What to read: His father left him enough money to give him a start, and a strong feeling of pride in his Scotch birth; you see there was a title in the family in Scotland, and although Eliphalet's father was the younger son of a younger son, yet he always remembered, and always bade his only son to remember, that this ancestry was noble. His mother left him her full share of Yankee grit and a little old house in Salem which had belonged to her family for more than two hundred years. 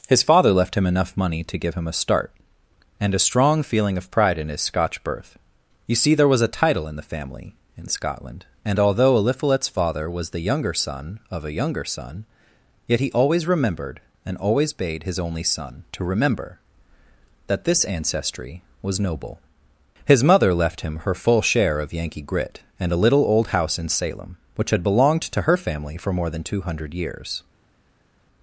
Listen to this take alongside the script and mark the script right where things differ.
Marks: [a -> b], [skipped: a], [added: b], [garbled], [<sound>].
His father left him enough money to give him a start, and a strong feeling of pride in his Scotch birth; you see there was a title in the family in Scotland, and although Eliphalet's father was the younger son of a younger son, yet he always remembered, and always bade his only son to remember, that this ancestry was noble. His mother left him her full share of Yankee grit and a little old house in Salem which had belonged to her family for more than two hundred years.